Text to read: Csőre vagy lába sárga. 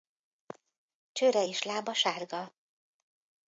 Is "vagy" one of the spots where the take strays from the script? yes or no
yes